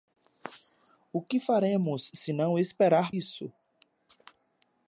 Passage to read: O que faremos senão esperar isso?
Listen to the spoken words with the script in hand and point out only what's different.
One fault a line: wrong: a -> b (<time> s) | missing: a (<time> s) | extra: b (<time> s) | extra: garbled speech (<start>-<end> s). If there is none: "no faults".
no faults